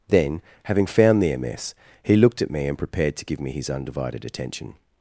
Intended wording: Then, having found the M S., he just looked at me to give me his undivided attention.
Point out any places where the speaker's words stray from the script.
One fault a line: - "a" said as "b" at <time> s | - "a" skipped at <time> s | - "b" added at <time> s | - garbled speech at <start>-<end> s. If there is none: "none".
- "just" skipped at 2.1 s
- "and prepared" added at 2.6 s